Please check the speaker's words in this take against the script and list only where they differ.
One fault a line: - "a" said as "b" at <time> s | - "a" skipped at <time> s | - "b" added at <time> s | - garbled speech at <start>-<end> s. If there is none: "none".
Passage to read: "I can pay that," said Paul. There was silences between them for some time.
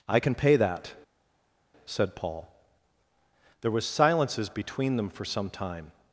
none